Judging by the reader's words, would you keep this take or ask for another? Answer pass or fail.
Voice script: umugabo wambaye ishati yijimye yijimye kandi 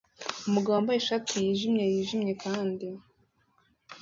pass